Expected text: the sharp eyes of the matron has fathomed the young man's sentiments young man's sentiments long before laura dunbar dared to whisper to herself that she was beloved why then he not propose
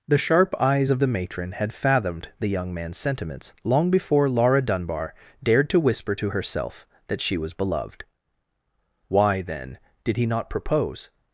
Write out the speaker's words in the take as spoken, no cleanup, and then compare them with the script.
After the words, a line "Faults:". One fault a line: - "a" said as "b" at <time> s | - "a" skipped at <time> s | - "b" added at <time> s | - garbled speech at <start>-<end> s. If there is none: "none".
the sharp eyes of the matron had fathomed the young man's sentiments long before laura dunbar dared to whisper to herself that she was beloved why then did he not propose
Faults:
- "has" said as "had" at 1.5 s
- "young man's sentiments" skipped at 3.5 s
- "did" added at 10.0 s